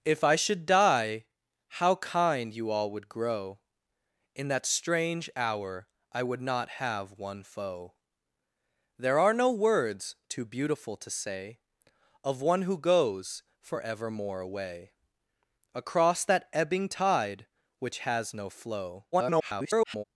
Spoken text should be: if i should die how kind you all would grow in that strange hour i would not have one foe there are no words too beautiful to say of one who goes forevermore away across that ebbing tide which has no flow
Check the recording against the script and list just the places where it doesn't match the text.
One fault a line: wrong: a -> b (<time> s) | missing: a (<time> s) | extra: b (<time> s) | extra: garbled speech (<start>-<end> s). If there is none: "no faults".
extra: garbled speech (19.1-20.0 s)